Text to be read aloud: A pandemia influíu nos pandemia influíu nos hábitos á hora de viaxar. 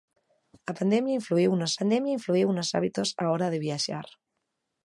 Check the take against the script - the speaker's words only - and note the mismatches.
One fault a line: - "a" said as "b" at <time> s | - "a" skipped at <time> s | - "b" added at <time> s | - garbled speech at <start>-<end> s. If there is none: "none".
none